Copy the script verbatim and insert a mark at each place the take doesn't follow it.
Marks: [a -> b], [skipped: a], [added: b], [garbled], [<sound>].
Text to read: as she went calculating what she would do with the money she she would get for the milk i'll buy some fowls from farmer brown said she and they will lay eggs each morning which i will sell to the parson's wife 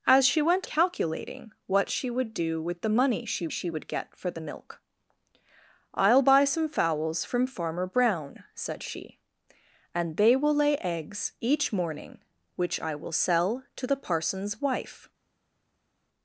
as she went calculating what she would do with the money she she would get for the milk i'll buy some fowls from farmer brown said she and they will lay eggs each morning which i will sell to the parson's wife